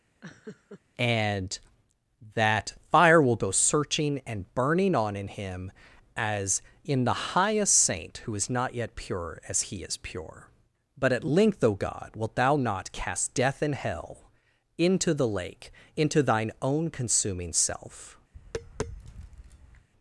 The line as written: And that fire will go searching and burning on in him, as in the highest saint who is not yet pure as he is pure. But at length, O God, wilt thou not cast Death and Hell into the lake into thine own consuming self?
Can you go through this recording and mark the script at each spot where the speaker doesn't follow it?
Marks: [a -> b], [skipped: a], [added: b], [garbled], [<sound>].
[laugh] And that fire will go searching and burning on in him, as in the highest saint who is not yet pure as he is pure. But at length, O God, wilt thou not cast Death and Hell into the lake into thine own consuming self? [tap]